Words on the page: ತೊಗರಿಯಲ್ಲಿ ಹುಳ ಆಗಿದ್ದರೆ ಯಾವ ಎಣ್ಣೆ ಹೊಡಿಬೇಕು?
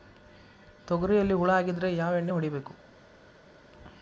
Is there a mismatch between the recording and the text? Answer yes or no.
no